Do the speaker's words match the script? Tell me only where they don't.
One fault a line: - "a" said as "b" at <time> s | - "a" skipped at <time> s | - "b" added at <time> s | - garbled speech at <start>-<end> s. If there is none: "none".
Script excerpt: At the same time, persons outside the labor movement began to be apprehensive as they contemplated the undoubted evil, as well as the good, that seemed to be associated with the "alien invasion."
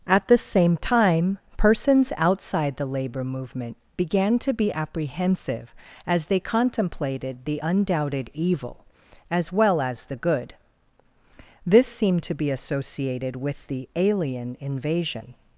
- "that" said as "this" at 11.7 s